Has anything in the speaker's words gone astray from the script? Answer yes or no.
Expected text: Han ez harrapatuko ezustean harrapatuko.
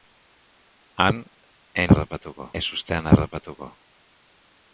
no